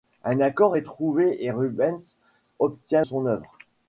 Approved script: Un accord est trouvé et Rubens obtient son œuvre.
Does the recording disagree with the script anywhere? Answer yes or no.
no